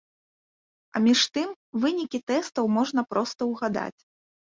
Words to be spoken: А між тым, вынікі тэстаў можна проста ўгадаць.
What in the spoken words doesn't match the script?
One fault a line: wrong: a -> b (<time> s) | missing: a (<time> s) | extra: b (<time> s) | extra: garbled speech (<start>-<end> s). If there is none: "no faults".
no faults